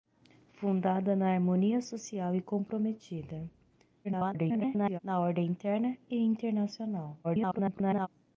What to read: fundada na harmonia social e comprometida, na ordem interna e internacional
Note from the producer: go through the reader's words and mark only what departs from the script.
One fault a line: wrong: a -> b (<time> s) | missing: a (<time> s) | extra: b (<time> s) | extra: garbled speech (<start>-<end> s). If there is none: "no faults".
extra: garbled speech (4.0-5.0 s)
extra: garbled speech (7.2-8.1 s)